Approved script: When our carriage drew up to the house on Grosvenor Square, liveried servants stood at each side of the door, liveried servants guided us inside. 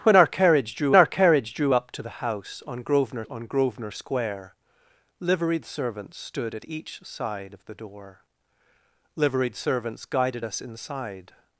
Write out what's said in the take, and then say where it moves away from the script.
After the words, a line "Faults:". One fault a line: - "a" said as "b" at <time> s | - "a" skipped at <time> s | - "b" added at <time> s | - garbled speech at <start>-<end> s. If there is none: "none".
When our carriage drew our carriage drew up to the house on Grosvenor on Grosvenor Square, liveried servants stood at each side of the door, liveried servants guided us inside.
Faults:
- "our carriage drew" added at 0.9 s
- "on Grosvenor" added at 3.3 s